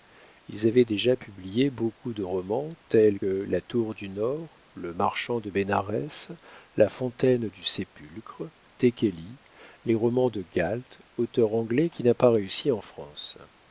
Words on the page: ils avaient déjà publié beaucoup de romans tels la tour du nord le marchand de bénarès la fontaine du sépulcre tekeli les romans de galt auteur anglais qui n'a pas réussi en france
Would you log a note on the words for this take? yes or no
no